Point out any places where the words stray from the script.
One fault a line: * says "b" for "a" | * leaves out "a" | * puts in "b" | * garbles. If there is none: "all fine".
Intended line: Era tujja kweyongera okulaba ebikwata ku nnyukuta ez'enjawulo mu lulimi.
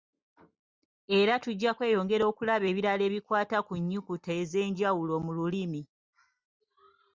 * puts in "ebirala"